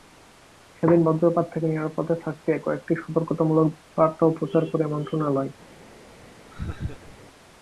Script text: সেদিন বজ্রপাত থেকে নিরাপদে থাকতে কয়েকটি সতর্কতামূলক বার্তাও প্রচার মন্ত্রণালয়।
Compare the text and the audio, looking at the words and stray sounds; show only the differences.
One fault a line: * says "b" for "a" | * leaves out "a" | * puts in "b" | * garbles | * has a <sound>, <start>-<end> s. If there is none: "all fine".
* puts in "করে"
* has a laugh, 6.5-7.2 s